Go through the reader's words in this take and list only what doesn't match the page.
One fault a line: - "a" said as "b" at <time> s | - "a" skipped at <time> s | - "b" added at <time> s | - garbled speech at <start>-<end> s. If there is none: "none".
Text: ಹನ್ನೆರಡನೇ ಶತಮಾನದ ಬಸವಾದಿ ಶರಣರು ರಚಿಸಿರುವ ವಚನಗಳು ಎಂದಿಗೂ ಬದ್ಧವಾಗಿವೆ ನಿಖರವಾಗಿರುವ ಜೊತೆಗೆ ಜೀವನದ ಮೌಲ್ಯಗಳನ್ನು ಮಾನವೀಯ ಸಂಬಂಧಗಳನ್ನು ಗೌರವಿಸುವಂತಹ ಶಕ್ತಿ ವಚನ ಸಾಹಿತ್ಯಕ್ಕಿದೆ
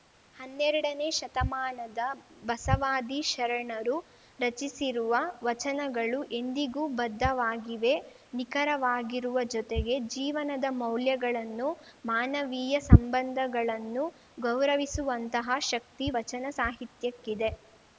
none